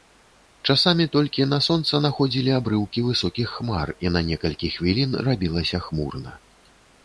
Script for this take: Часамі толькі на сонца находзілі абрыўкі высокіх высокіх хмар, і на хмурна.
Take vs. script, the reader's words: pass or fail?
fail